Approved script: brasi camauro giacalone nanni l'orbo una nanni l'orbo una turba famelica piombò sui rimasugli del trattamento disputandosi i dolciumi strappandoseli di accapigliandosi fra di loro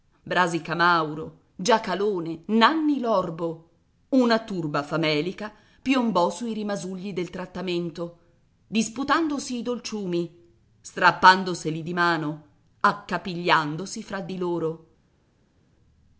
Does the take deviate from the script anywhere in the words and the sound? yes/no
yes